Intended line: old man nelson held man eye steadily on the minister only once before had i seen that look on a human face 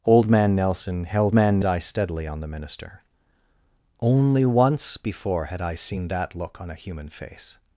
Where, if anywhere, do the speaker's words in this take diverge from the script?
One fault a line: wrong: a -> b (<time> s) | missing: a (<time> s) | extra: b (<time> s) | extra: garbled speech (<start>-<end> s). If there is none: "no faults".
no faults